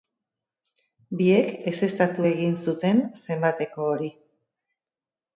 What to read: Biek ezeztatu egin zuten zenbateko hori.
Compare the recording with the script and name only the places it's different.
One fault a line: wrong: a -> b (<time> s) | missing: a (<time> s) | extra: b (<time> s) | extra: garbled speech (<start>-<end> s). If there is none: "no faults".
no faults